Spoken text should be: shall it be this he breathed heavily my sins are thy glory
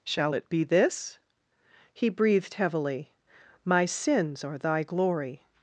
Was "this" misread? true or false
false